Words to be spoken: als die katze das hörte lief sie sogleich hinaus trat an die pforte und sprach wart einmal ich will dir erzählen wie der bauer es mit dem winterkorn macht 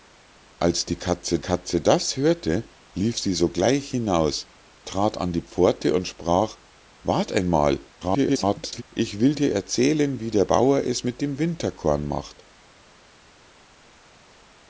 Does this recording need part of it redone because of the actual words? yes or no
yes